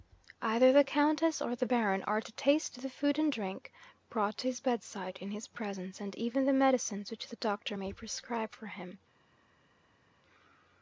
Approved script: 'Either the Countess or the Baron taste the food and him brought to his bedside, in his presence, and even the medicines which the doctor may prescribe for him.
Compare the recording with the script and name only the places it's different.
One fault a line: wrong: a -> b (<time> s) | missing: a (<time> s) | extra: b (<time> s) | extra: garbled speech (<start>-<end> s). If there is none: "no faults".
extra: are to (2.0 s)
wrong: him -> drink (3.3 s)